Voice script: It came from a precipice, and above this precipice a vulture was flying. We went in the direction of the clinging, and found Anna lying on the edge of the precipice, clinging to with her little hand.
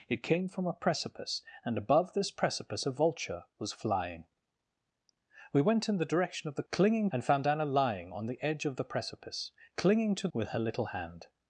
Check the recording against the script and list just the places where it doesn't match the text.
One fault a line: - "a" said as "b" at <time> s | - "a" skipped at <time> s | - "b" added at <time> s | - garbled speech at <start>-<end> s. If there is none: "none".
none